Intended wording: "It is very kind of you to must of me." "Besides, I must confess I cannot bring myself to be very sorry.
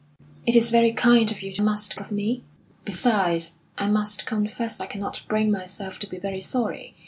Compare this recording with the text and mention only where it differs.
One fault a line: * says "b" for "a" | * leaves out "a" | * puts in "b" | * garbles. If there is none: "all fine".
all fine